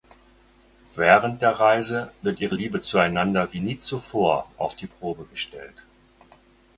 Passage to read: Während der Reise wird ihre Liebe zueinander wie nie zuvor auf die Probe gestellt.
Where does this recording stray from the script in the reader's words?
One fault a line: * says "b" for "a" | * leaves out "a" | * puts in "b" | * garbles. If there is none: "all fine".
all fine